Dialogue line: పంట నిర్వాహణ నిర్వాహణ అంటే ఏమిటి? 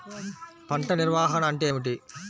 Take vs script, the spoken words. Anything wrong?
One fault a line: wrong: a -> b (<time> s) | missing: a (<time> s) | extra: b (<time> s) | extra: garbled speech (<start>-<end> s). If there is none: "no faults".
missing: నిర్వాహణ (1.4 s)